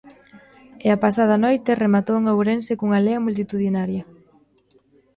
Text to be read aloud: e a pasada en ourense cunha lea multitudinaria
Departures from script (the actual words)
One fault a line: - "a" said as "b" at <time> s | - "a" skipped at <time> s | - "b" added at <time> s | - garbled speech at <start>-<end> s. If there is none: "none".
- "noite rematou" added at 1.4 s